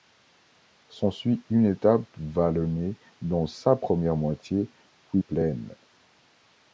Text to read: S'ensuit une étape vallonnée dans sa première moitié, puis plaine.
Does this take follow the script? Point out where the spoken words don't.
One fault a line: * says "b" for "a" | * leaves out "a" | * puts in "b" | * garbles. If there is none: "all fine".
all fine